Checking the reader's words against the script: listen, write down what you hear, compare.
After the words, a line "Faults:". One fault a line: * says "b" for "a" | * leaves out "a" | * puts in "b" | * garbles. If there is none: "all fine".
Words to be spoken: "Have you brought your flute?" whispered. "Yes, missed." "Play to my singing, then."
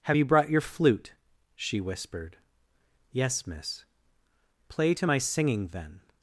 "Have you brought your flute?" she whispered. "Yes, miss." "Play to my singing, then."
Faults:
* puts in "she"
* says "miss" for "missed"